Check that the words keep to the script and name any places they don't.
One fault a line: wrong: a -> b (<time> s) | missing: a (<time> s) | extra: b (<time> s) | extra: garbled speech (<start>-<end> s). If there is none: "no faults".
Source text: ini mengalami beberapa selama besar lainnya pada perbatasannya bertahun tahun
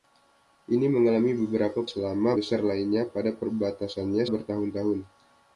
no faults